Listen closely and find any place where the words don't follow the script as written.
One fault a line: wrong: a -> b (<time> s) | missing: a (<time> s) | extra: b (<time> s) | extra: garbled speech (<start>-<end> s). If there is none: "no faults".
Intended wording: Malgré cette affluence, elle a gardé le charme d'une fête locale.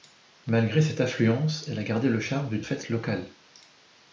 no faults